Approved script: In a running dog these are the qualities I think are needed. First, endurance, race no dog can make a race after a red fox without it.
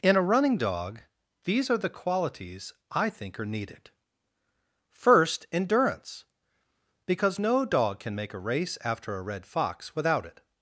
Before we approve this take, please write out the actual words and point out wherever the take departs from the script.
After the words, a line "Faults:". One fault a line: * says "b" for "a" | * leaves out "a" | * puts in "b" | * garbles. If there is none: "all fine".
In a running dog these are the qualities I think are needed. First, endurance, because no dog can make a race after a red fox without it.
Faults:
* says "because" for "race"